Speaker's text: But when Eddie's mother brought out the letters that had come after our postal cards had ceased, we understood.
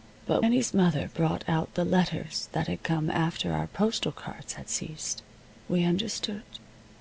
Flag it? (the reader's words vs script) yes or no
yes